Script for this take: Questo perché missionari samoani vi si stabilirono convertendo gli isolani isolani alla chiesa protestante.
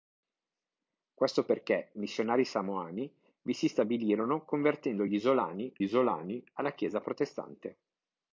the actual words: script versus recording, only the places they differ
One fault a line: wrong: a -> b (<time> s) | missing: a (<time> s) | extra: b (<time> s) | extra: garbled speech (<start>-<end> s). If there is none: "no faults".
no faults